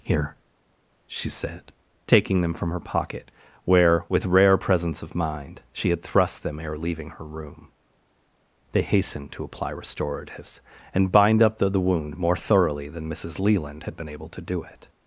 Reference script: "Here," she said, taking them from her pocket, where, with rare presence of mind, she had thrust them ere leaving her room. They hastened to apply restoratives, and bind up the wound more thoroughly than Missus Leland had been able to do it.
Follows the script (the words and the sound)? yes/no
no